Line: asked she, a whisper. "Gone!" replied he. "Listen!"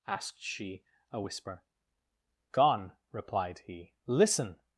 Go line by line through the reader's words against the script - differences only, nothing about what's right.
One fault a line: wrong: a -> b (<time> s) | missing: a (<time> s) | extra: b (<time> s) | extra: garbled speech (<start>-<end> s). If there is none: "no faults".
no faults